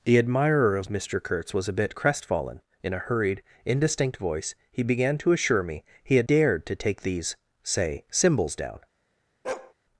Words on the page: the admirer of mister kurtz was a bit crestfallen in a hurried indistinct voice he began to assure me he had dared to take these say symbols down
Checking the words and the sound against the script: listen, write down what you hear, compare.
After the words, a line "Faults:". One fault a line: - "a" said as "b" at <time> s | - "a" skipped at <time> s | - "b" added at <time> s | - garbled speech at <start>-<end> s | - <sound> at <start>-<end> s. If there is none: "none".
the admirer of mister kurtz was a bit crestfallen in a hurried indistinct voice he began to assure me he had dared to take these say symbols down
Faults:
- bark at 9.4-9.7 s